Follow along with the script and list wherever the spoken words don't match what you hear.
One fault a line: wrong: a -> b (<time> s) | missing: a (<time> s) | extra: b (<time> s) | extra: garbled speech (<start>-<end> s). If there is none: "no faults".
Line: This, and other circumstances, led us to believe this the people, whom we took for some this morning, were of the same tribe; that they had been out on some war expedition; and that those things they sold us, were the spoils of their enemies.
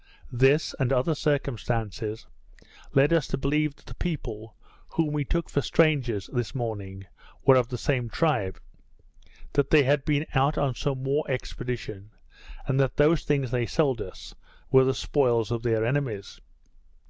wrong: this -> that (3.8 s)
wrong: some -> strangers (5.6 s)